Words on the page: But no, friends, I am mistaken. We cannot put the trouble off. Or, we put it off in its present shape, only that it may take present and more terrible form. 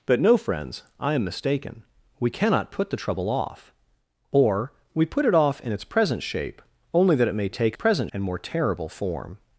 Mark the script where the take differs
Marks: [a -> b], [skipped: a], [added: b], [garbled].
But no, friends, I am mistaken. We cannot put the trouble off. Or, we put it off in its present shape, only that it may take present and more terrible form.